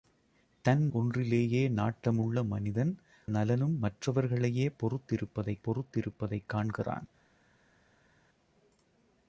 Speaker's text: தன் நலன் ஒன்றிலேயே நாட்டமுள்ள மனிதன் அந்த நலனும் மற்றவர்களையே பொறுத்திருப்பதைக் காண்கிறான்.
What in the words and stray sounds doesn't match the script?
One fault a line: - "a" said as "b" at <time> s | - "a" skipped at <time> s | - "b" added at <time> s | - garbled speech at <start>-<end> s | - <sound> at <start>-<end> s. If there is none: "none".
- "நலன்" skipped at 0.9 s
- "அந்த" skipped at 3.0 s
- "பொறுத்திருப்பதைக்" added at 5.7 s